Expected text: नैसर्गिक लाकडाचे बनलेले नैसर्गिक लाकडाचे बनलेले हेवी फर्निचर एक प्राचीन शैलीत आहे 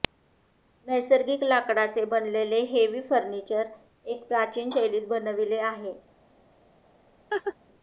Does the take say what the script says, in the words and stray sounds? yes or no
no